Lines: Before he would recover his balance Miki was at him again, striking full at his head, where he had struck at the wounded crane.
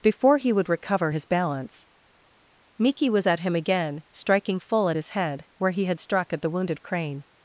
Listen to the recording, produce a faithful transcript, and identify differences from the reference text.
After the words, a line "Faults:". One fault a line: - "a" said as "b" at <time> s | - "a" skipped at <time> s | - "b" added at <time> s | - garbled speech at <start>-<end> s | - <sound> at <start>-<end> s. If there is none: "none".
Before he would recover his balance Miki was at him again, striking full at his head, where he had struck at the wounded crane.
Faults:
none